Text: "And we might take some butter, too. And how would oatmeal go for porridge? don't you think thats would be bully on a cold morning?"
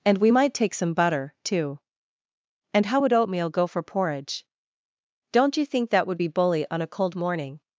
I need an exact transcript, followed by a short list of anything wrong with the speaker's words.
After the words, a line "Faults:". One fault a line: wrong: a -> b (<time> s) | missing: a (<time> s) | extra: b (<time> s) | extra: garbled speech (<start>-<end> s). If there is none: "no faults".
"And we might take some butter, too. And how would oatmeal go for porridge? don't you think that would be bully on a cold morning?"
Faults:
wrong: thats -> that (5.9 s)